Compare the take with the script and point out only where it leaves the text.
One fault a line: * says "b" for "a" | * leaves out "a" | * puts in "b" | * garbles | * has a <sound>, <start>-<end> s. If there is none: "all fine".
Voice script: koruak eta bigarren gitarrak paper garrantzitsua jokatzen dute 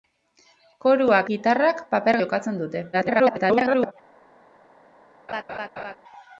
* leaves out "eta bigarren"
* leaves out "garrantzitsua"
* garbles
* has a laugh, 5.3-6.0 s